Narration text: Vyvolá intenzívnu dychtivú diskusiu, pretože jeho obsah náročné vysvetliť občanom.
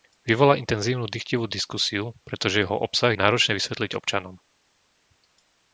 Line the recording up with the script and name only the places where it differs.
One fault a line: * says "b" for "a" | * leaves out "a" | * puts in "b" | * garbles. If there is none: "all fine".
all fine